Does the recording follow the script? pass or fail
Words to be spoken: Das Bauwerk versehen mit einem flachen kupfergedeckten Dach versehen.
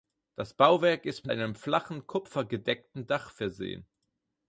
fail